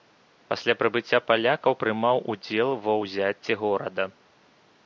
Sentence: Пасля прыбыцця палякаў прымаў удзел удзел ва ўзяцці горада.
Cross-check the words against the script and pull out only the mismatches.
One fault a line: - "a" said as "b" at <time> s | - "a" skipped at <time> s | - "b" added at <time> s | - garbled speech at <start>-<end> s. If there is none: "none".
- "удзел" skipped at 2.7 s